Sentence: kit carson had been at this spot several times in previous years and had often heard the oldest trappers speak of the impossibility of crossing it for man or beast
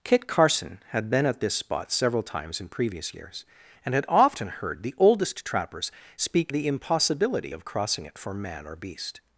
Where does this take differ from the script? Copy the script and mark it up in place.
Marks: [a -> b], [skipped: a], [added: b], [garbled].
kit carson had been at this spot several times in previous years and had often heard the oldest trappers speak [skipped: of] the impossibility of crossing it for man or beast